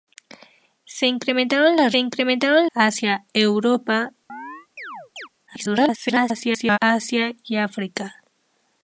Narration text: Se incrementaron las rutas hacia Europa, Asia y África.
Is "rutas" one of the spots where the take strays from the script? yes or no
yes